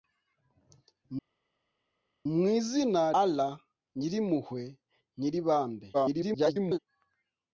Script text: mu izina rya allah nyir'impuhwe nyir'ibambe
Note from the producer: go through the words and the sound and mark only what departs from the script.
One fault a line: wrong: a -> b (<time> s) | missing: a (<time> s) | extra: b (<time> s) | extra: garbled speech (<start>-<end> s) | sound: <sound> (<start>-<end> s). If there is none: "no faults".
missing: rya (3.0 s)
extra: garbled speech (5.9-6.8 s)